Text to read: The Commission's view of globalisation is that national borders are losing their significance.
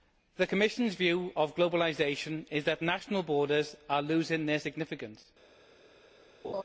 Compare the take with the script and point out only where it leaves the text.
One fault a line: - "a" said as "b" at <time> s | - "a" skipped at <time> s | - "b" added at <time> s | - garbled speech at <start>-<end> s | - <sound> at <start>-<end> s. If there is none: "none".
- laugh at 6.4-6.6 s